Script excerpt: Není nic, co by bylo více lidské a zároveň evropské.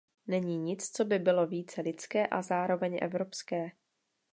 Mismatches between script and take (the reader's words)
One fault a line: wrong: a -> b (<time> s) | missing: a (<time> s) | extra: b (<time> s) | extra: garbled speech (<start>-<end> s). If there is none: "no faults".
no faults